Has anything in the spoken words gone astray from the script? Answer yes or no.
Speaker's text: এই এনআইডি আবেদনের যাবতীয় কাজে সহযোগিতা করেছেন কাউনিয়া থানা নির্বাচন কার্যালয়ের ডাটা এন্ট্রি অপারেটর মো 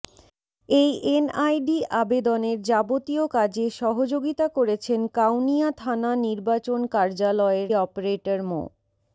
yes